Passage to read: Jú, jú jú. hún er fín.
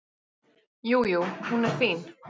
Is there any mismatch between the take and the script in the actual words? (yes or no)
yes